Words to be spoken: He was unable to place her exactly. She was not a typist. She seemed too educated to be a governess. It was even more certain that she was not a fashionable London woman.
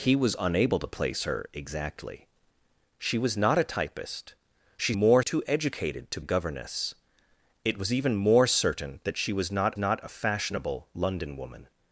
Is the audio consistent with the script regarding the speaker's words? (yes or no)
no